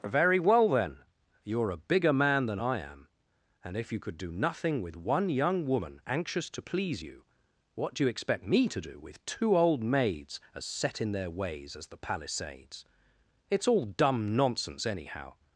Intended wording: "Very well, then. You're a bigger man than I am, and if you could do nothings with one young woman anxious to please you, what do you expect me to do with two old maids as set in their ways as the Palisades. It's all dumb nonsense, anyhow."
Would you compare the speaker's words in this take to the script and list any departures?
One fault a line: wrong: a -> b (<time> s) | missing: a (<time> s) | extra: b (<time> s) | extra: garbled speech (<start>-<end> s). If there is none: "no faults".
wrong: nothings -> nothing (4.3 s)